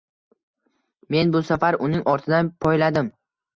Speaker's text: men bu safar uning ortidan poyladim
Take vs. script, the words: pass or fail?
pass